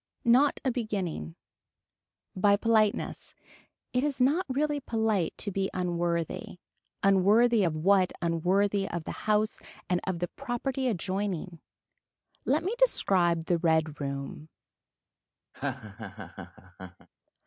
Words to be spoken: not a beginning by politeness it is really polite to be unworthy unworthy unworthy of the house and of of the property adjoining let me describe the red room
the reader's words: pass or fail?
fail